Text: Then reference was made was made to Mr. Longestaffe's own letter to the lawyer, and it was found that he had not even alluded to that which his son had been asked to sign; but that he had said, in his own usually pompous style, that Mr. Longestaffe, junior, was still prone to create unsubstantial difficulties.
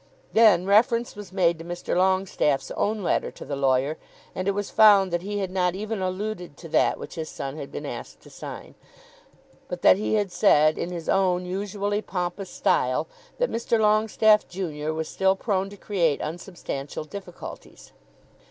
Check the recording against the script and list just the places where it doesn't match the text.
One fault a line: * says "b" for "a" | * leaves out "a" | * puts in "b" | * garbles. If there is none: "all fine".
* leaves out "was made"